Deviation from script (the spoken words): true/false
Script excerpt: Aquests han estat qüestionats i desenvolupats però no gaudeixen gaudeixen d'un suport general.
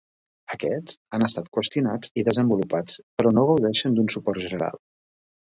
true